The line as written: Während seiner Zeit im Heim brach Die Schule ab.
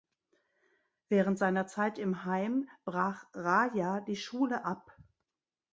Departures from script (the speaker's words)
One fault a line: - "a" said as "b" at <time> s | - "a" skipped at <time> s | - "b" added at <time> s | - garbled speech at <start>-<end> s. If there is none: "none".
- "Raja" added at 3.4 s